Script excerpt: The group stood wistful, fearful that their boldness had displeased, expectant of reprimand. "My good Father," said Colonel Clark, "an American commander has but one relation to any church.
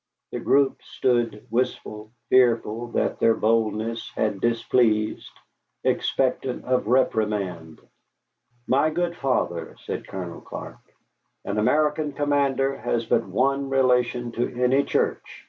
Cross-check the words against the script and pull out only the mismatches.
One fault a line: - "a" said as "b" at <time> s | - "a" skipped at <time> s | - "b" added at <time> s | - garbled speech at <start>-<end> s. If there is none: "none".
none